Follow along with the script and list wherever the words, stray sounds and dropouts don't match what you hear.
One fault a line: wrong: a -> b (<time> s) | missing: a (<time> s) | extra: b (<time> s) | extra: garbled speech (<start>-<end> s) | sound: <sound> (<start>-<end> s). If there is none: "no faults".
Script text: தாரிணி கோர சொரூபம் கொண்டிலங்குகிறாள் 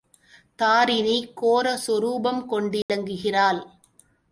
sound: dropout (2.8-2.9 s)